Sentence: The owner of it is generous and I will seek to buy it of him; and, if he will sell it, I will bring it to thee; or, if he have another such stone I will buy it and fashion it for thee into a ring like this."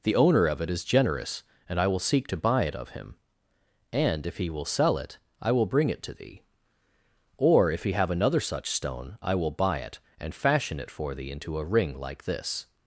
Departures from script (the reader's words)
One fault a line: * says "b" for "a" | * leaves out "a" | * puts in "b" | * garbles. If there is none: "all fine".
all fine